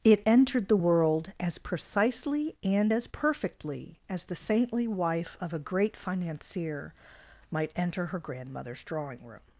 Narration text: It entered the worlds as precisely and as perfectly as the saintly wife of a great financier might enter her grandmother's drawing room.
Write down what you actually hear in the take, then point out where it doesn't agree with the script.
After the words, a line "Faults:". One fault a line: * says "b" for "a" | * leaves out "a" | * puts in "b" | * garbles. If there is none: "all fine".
It entered the world as precisely and as perfectly as the saintly wife of a great financier might enter her grandmother's drawing room.
Faults:
* says "world" for "worlds"